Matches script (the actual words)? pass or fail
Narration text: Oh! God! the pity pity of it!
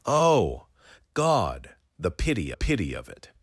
pass